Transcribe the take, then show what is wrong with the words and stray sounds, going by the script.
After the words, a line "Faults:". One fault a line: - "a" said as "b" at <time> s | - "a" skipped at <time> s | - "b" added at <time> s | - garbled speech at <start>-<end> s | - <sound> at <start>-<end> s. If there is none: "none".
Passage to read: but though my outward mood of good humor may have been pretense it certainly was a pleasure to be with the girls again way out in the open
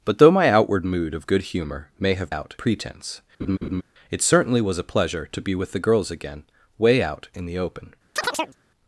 but though my outward mood of good humor may have out pretense it certainly was a pleasure to be with the girls again way out in the open
Faults:
- "been" said as "out" at 2.3 s
- laugh at 3.4-3.8 s
- chirp at 8.2-8.6 s